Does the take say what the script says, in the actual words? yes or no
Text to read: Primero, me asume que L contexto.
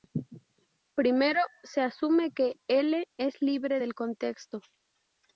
no